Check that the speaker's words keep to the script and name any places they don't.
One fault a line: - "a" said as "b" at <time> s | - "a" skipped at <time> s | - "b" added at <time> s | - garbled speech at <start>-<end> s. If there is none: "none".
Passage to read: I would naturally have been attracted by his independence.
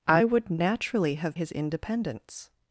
- "been attracted by" skipped at 1.4 s